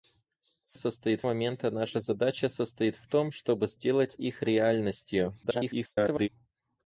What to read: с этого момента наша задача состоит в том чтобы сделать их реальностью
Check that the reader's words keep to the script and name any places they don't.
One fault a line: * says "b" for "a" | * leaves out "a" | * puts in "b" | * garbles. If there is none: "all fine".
* says "состоит" for "этого"
* garbles